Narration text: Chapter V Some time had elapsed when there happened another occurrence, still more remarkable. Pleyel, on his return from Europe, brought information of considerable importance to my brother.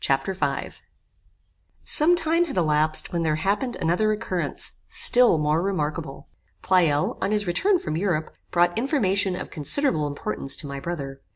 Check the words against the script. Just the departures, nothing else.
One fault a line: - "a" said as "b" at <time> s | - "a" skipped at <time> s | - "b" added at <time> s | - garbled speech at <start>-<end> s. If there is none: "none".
none